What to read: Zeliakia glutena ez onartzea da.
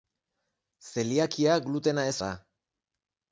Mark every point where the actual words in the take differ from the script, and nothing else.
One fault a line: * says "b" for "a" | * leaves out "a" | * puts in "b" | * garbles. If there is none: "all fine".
* leaves out "onartzea"